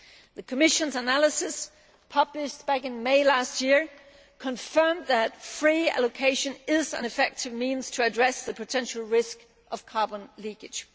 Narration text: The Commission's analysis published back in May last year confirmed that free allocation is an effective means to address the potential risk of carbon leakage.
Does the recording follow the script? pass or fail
pass